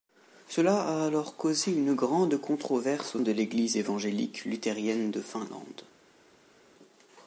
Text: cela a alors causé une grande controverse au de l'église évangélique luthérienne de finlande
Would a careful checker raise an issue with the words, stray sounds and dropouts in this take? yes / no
no